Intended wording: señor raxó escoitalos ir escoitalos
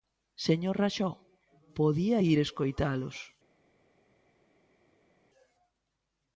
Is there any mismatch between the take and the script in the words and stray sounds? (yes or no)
yes